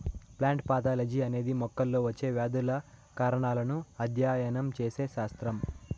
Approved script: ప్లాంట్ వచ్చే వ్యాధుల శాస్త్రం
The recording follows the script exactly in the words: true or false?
false